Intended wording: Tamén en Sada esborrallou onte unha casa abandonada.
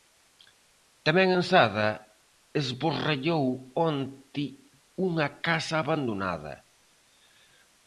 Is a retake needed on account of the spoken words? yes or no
no